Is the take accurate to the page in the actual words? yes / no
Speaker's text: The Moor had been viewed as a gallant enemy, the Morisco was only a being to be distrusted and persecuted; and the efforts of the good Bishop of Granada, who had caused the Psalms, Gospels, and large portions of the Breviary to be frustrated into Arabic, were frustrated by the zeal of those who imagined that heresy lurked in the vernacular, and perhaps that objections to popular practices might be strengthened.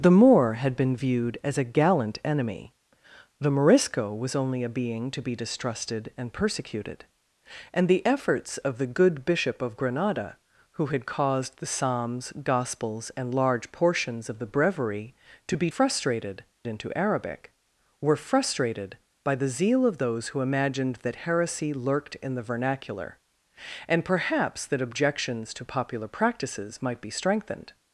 yes